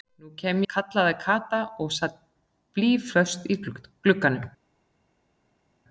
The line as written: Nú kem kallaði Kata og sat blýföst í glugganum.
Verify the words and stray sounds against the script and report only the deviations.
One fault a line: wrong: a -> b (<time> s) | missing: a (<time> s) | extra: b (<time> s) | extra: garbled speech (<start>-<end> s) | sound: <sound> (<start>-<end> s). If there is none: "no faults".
no faults